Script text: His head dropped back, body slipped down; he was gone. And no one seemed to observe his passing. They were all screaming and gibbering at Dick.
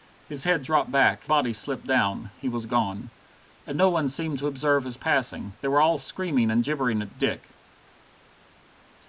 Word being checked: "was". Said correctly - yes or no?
yes